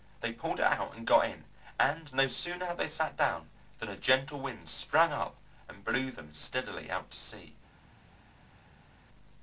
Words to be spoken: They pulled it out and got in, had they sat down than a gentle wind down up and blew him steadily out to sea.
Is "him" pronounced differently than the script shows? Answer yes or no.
yes